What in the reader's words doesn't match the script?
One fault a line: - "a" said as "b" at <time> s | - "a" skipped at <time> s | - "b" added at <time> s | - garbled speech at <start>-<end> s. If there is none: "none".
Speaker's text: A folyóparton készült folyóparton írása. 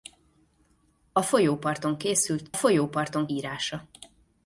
none